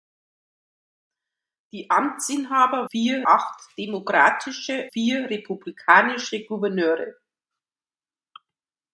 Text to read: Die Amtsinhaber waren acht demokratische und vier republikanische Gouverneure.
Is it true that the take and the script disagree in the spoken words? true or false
true